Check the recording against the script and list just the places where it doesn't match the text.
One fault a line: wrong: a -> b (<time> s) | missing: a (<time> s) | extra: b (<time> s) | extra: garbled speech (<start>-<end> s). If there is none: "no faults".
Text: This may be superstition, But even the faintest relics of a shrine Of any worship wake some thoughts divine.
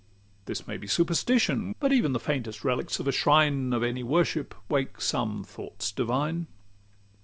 no faults